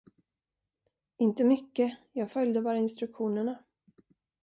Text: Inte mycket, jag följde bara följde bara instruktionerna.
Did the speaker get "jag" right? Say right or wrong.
right